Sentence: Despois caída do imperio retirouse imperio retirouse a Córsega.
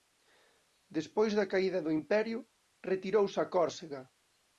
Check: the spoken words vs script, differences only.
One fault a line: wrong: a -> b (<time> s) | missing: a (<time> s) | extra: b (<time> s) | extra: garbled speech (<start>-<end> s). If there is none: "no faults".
extra: da (1.4 s)
missing: imperio retirouse (3.4 s)